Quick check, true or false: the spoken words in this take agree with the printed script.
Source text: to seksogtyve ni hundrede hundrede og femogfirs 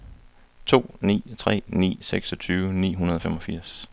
false